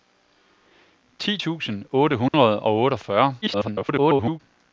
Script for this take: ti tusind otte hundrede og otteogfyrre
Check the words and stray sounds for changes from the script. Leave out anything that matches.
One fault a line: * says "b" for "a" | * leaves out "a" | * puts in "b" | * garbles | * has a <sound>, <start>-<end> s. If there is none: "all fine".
* has a dropout, 2.3-2.3 s
* garbles